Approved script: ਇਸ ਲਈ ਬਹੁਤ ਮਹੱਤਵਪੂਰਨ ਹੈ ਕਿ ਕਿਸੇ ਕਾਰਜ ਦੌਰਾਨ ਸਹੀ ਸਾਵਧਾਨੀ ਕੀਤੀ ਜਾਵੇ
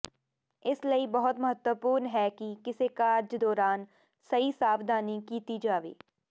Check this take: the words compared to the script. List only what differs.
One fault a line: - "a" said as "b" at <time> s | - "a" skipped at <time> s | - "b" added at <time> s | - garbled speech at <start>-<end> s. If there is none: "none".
none